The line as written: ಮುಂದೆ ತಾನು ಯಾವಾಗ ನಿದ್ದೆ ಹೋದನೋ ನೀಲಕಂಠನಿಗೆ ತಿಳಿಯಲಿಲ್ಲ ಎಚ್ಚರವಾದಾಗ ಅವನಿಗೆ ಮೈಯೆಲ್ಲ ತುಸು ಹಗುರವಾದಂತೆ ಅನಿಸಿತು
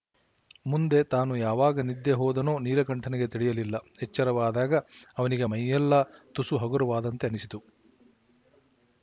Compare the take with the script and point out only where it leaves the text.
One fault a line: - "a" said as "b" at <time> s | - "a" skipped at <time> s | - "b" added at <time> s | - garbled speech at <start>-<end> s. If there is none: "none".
none